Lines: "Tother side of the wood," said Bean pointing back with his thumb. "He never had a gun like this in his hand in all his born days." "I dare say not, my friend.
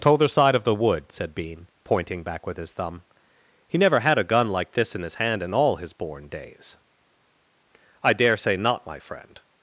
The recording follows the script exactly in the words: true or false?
true